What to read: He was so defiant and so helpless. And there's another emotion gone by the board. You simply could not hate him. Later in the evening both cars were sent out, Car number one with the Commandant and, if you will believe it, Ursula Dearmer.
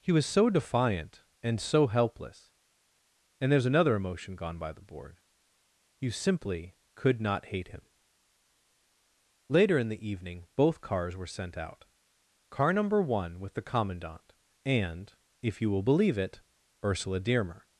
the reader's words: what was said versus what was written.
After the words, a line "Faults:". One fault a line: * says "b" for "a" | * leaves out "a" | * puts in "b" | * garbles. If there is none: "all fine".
He was so defiant and so helpless. And there's another emotion gone by the board. You simply could not hate him. Later in the evening both cars were sent out, Car number one with the Commandant and, if you will believe it, Ursula Dearmer.
Faults:
all fine